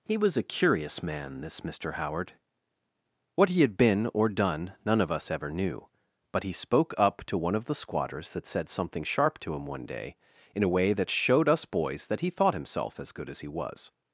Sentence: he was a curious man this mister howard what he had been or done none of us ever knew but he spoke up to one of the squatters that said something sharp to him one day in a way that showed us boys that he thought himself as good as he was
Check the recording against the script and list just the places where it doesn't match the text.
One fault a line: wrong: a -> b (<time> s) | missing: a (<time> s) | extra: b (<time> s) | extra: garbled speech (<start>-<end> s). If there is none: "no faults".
no faults